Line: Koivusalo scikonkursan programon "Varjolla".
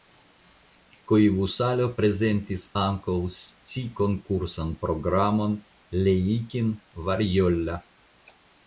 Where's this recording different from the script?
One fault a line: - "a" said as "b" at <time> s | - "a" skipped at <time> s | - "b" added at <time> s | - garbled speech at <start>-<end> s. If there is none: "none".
- "prezentis ankaŭ" added at 2.0 s
- "Leikin" added at 6.0 s